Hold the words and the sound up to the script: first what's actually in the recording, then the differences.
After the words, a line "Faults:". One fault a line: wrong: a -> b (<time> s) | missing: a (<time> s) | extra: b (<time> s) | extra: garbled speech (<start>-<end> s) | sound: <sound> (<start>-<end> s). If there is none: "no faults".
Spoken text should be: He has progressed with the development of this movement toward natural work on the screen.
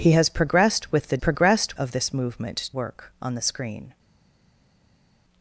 He has progressed with the progressed of this movement work on the screen.
Faults:
wrong: development -> progressed (1.2 s)
missing: toward natural (2.7 s)